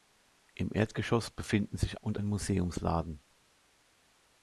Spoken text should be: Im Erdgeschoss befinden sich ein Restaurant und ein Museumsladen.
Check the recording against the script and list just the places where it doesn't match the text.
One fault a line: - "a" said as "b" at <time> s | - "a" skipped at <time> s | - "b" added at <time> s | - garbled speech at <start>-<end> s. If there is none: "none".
- "ein Restaurant" skipped at 2.0 s